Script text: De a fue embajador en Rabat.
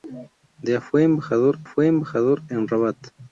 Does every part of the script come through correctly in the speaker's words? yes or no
no